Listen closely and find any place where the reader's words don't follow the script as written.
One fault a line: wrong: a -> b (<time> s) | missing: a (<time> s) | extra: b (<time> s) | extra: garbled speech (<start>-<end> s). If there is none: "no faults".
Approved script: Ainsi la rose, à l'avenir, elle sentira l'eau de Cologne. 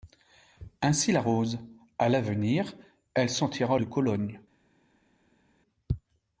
missing: l'eau (3.8 s)